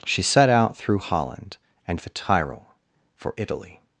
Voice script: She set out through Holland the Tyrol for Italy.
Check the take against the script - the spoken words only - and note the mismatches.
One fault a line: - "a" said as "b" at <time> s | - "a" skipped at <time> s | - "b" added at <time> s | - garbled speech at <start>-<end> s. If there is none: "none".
- "and" added at 1.9 s